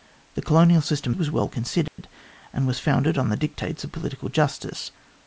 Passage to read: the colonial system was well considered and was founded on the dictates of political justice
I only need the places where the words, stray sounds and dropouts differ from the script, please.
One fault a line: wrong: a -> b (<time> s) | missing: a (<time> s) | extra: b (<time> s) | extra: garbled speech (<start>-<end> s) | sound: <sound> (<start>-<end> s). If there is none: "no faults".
sound: dropout (1.9-2.0 s)